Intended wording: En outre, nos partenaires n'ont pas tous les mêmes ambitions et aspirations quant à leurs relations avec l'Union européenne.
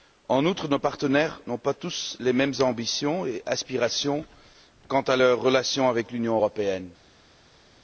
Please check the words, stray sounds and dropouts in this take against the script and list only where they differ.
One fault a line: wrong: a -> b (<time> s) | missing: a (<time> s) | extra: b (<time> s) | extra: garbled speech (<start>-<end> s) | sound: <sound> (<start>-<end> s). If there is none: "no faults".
no faults